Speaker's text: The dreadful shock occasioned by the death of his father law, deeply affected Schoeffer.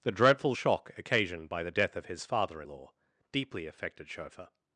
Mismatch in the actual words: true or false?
false